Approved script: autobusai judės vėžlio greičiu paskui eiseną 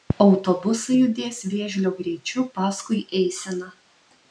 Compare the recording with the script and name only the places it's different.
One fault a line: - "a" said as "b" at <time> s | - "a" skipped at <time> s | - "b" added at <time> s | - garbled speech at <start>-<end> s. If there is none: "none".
none